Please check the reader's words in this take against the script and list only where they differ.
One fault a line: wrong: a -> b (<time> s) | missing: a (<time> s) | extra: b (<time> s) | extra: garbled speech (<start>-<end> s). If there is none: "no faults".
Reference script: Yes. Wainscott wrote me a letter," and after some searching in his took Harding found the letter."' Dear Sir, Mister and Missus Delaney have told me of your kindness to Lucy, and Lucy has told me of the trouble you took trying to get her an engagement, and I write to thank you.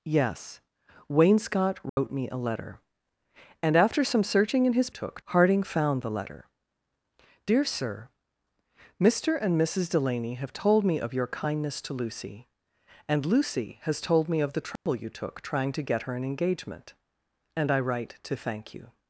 no faults